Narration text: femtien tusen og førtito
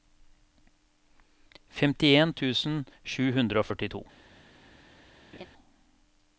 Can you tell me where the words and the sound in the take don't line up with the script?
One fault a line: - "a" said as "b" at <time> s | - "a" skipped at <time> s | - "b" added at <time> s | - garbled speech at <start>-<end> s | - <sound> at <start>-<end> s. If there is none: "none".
- "sju hundre" added at 3.1 s
- laugh at 5.3-5.5 s